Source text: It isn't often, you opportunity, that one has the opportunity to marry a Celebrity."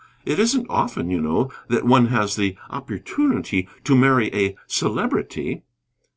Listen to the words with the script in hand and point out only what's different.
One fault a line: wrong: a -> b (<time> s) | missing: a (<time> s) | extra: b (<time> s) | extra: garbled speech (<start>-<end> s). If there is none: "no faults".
wrong: opportunity -> know (1.2 s)